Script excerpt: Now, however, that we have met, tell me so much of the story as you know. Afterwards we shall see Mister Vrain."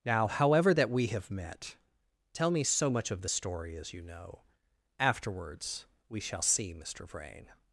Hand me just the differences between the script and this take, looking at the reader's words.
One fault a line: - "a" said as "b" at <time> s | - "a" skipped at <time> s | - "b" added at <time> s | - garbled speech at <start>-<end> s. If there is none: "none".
none